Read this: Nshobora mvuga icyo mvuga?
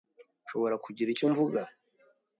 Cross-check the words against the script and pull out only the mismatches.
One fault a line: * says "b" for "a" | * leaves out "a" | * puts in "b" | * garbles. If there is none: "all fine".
* says "kugira" for "mvuga"